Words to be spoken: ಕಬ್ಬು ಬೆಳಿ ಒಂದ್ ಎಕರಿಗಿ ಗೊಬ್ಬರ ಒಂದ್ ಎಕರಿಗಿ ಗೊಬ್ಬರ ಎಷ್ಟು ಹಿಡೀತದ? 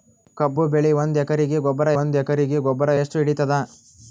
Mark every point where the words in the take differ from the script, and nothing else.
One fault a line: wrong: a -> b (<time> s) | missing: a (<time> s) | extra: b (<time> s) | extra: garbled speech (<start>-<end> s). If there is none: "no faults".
no faults